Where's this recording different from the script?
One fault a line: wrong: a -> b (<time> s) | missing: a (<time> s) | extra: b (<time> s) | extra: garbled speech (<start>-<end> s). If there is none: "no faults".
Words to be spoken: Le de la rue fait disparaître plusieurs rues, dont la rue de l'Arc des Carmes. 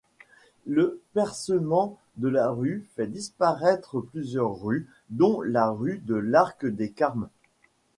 extra: percement (1.1 s)